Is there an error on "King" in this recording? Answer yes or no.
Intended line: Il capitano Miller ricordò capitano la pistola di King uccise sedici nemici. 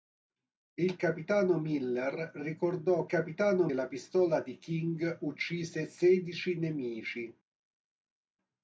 no